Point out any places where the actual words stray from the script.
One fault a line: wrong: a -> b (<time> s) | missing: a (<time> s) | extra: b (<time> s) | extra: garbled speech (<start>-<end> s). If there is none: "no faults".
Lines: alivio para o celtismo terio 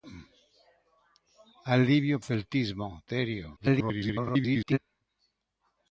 missing: para (2.2 s)
extra: garbled speech (3.5-4.8 s)